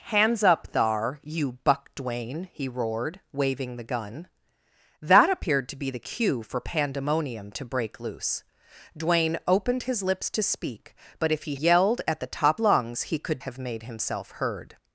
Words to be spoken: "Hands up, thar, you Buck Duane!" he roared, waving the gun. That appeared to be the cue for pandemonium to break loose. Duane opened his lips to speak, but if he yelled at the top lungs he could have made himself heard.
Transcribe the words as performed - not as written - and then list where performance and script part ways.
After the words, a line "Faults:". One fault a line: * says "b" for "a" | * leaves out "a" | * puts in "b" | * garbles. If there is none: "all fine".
"Hands up, thar, you Buck Duane!" he roared, waving the gun. That appeared to be the cue for pandemonium to break loose. Duane opened his lips to speak, but if he yelled at the top lungs he could have made himself heard.
Faults:
all fine